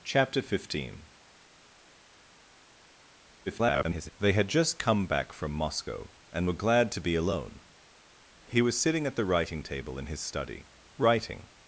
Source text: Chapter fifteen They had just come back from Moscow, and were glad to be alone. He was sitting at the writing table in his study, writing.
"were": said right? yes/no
yes